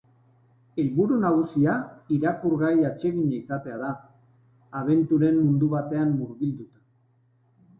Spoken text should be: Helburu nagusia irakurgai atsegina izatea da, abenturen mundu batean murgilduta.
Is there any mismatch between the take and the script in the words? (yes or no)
no